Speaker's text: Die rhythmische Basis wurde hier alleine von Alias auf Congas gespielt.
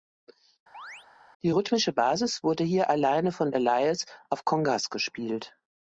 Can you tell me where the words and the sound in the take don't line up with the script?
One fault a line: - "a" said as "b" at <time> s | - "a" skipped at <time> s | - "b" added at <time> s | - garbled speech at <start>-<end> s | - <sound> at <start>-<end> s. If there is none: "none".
- chirp at 0.7-1.1 s